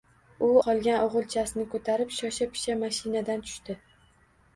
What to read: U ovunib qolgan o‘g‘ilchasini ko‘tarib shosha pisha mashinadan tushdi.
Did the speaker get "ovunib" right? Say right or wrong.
wrong